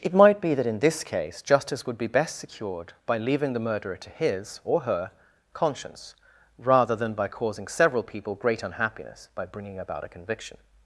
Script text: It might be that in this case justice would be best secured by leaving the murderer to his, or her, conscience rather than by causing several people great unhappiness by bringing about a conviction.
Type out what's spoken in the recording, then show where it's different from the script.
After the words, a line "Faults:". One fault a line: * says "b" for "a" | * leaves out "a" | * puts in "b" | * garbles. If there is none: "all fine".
It might be that in this case justice would be best secured by leaving the murderer to his, or her, conscience rather than by causing several people great unhappiness by bringing about a conviction.
Faults:
all fine